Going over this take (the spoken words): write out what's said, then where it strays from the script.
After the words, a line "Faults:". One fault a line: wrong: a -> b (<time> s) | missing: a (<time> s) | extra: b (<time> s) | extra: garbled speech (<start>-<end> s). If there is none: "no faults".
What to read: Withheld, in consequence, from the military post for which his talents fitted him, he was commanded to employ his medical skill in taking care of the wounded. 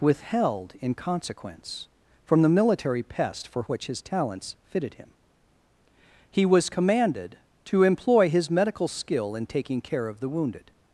Withheld, in consequence, from the military pest for which his talents fitted him, he was commanded to employ his medical skill in taking care of the wounded.
Faults:
wrong: post -> pest (3.0 s)